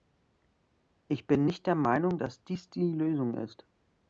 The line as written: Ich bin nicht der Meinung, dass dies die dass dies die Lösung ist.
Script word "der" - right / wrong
right